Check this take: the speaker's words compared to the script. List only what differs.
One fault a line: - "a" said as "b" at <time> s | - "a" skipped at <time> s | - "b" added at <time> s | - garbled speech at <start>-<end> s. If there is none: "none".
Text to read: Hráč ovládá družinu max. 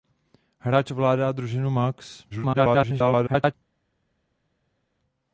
- garbled speech at 2.3-3.5 s